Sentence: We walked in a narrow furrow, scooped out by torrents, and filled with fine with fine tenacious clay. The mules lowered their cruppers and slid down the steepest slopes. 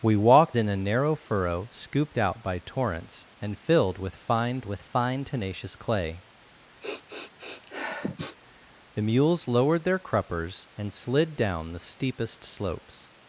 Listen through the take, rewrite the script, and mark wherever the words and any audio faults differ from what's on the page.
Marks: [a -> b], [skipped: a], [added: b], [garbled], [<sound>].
We walked in a narrow furrow, scooped out by torrents, and filled with fine with fine tenacious clay. [sniff] The mules lowered their cruppers and slid down the steepest slopes.